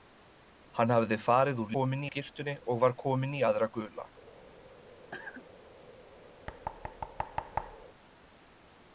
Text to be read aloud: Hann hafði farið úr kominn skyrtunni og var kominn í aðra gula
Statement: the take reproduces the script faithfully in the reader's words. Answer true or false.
true